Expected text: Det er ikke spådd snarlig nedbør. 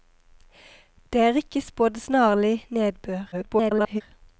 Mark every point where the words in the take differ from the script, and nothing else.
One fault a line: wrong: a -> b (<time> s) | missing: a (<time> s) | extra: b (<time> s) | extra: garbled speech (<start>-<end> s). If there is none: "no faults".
extra: garbled speech (3.3-4.0 s)